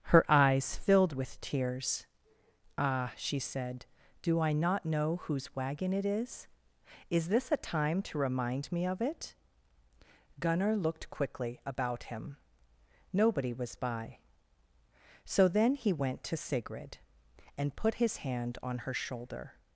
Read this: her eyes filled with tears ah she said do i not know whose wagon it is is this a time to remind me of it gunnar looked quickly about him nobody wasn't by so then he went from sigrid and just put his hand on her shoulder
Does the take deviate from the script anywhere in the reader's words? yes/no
yes